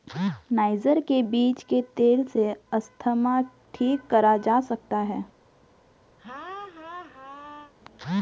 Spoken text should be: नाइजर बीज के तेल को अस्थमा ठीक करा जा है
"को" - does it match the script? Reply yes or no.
no